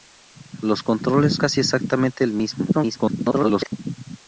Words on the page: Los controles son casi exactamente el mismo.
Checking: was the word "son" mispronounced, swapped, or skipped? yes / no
yes